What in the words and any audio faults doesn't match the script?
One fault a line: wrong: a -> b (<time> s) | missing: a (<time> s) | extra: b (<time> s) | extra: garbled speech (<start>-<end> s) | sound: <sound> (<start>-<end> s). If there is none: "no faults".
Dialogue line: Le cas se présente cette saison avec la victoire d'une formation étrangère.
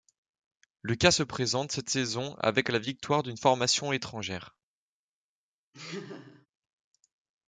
sound: laugh (5.7-6.5 s)